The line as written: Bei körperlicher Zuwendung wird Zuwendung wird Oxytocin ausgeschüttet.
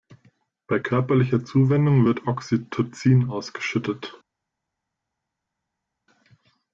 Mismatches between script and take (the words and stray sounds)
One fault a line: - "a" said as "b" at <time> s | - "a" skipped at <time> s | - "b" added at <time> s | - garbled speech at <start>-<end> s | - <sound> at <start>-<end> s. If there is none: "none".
- "Zuwendung wird" skipped at 2.3 s